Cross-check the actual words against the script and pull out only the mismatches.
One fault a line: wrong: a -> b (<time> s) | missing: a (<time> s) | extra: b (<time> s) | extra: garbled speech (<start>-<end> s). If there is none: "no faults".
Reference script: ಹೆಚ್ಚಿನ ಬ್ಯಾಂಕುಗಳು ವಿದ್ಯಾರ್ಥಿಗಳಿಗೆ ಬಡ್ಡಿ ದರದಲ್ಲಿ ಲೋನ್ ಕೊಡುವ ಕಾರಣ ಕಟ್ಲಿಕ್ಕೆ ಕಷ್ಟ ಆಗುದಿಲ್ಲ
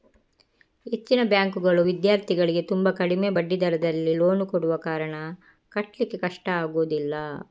extra: ತುಂಬಾ ಕಡಿಮೆ (2.7 s)